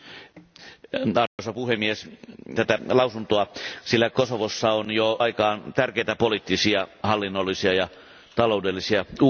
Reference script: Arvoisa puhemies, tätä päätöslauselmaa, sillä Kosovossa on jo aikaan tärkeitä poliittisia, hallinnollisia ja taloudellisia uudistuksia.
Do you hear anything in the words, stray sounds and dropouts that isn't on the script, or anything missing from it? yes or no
yes